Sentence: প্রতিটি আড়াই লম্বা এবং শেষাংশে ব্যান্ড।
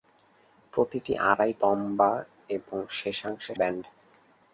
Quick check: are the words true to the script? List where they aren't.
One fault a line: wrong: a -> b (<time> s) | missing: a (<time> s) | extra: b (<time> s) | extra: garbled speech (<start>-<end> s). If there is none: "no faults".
no faults